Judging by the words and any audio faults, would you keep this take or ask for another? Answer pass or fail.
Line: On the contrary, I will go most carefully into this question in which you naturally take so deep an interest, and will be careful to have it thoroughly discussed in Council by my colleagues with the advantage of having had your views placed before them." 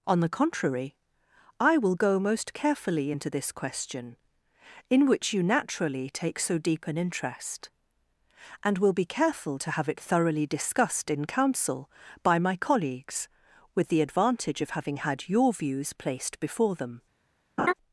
fail